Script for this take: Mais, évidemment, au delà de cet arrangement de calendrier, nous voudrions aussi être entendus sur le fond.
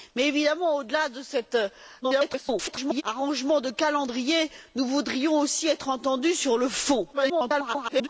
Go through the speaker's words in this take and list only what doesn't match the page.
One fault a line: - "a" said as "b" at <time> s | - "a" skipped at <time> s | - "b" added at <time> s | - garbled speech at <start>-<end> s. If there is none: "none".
- garbled speech at 2.0-3.0 s
- garbled speech at 7.1-8.1 s